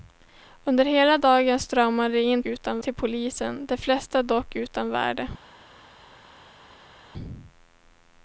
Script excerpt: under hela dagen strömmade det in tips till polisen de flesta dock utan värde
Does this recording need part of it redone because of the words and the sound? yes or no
yes